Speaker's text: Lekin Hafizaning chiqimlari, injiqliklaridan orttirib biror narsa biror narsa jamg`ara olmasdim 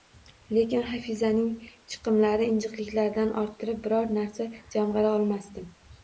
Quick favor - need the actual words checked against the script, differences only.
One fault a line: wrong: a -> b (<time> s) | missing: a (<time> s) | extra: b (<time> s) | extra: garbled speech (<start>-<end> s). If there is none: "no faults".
missing: biror narsa (4.5 s)